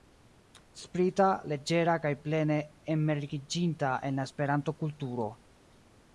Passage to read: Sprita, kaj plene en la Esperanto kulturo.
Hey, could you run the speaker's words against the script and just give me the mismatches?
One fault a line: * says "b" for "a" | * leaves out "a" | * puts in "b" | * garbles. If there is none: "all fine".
* puts in "leĝera"
* puts in "enmergiĝinta"